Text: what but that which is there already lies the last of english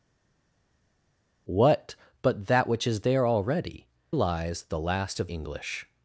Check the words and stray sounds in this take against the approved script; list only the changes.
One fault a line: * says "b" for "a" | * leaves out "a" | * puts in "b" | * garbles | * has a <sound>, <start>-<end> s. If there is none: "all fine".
all fine